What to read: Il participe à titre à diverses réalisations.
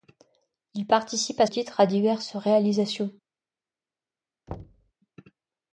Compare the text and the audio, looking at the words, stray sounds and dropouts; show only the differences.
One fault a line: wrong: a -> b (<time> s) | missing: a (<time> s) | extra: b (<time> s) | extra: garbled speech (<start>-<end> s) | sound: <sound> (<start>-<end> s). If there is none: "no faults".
sound: thud (4.5-4.9 s)